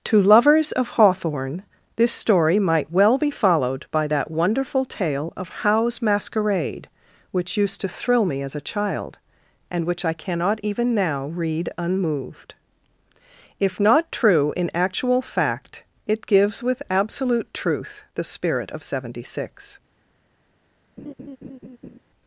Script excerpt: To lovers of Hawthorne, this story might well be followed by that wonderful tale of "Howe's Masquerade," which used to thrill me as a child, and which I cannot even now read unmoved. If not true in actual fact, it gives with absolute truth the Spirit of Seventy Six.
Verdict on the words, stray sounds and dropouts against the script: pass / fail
fail